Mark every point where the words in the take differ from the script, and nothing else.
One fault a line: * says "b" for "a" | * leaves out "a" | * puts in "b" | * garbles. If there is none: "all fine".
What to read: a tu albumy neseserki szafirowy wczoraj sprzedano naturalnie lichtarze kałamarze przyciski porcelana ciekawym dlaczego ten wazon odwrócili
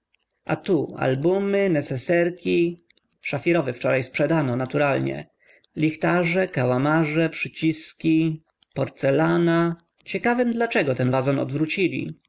all fine